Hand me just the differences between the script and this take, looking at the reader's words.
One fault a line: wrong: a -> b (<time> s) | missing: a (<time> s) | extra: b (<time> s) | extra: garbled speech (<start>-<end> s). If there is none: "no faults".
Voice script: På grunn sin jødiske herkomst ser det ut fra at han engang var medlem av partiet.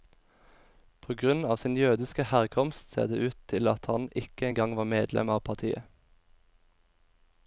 extra: av (1.4 s)
wrong: fra -> til (3.5 s)
extra: ikke (4.2 s)